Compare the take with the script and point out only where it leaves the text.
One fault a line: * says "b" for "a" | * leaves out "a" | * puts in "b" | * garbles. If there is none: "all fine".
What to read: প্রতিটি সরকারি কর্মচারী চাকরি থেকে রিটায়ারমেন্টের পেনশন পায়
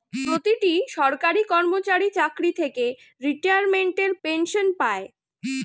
all fine